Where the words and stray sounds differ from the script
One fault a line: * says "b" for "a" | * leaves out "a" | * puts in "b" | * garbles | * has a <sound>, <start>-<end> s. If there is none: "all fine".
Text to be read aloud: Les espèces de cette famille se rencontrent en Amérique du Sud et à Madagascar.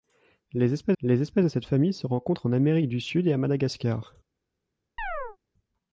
* puts in "les espèces"
* has a chirp, 5.0-5.4 s